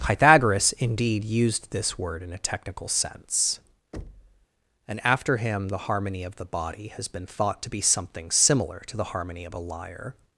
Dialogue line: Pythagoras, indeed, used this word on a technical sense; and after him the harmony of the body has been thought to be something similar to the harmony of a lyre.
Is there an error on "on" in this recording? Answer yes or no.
yes